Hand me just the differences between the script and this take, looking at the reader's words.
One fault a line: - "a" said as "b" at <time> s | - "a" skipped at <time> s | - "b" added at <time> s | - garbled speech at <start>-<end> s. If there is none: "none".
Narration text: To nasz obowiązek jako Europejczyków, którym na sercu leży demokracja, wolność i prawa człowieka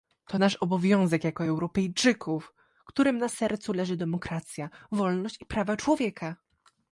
none